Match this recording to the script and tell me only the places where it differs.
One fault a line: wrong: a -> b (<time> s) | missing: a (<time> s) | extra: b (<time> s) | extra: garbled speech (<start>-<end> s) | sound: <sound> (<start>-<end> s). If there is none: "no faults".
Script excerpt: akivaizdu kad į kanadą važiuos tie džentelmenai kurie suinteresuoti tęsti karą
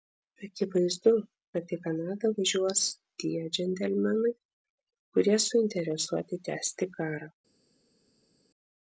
no faults